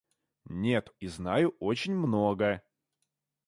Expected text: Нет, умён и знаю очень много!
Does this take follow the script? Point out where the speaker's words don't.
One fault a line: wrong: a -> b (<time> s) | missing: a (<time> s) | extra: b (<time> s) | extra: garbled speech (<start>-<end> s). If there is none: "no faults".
missing: умён (0.9 s)